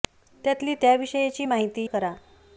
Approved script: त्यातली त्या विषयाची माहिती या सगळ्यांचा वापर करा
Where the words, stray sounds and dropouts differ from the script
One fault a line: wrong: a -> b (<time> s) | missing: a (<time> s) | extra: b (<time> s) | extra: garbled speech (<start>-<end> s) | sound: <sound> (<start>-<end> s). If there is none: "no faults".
missing: या सगळ्यांचा वापर (1.9 s)